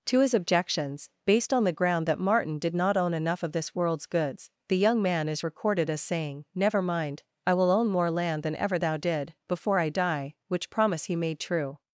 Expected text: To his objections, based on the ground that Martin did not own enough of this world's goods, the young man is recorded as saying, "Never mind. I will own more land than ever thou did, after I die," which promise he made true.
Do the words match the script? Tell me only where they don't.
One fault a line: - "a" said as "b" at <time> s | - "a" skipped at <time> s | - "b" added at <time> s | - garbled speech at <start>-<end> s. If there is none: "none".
- "after" said as "before" at 9.5 s